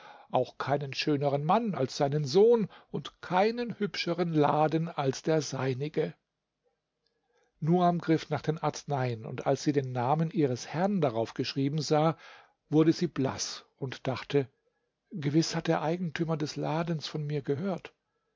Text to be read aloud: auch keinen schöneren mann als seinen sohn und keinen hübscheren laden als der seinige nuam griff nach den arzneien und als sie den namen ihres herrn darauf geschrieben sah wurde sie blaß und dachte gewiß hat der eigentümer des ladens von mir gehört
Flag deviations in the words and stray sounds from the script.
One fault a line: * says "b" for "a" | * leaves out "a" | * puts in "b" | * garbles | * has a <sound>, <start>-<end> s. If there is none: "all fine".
all fine